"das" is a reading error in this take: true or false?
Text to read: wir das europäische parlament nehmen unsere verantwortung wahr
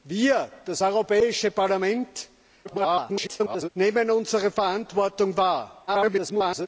false